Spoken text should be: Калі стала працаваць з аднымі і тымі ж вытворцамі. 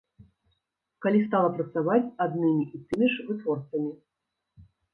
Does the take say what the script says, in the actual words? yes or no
yes